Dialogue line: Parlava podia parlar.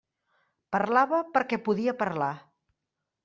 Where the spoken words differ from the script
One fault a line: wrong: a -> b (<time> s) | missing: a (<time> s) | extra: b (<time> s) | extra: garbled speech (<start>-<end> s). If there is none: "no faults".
extra: perquè (1.4 s)